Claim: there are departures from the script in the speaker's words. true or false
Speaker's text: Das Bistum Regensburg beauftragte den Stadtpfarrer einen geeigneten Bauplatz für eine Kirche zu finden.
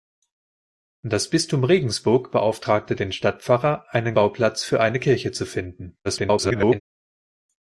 true